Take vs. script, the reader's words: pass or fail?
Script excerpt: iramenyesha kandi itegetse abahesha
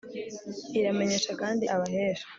fail